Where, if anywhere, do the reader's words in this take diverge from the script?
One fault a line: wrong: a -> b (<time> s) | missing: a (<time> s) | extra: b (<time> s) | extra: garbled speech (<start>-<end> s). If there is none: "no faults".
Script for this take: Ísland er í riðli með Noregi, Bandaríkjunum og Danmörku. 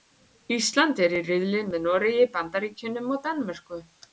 no faults